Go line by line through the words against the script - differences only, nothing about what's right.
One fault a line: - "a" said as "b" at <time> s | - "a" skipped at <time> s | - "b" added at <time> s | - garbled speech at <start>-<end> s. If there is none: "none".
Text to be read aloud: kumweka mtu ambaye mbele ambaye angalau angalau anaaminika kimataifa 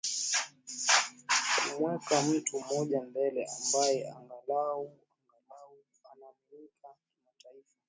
- "ambaye" said as "mmoja" at 2.6 s